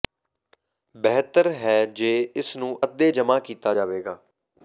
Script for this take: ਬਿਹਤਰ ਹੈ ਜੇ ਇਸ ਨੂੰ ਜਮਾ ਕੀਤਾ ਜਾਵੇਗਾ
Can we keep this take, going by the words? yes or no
no